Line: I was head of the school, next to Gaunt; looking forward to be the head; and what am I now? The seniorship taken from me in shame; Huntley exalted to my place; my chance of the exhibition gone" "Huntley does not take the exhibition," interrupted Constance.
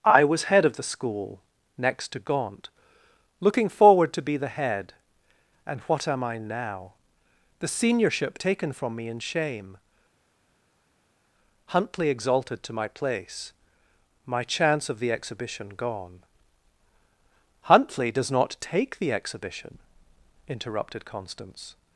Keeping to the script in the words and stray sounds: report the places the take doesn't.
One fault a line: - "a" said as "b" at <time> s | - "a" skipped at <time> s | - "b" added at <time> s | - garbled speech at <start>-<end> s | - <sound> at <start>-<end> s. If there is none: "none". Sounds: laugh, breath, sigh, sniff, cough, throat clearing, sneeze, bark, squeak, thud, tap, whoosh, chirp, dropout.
none